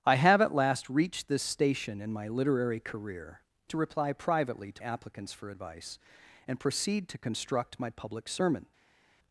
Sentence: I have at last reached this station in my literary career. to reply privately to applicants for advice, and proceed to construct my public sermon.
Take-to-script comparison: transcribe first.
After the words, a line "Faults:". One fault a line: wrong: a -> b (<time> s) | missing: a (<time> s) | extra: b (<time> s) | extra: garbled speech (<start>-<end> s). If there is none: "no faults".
I have at last reached this station in my literary career. to reply privately to applicants for advice, and proceed to construct my public sermon.
Faults:
no faults